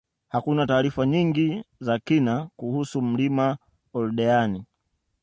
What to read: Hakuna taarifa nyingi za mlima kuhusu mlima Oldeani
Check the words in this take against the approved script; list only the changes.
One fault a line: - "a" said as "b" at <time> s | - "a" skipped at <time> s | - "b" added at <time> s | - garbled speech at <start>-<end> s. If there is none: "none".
- "mlima" said as "kina" at 2.0 s